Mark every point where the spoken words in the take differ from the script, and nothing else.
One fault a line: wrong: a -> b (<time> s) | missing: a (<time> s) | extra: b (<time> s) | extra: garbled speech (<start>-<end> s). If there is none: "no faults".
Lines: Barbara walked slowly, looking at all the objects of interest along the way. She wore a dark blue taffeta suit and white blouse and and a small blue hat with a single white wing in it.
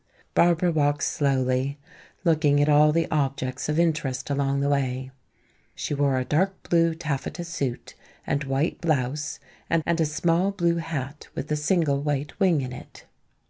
no faults